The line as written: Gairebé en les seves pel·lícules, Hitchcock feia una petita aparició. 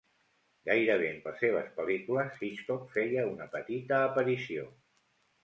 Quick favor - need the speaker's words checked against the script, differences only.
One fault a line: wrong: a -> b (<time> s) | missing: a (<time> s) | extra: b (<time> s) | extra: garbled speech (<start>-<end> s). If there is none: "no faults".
no faults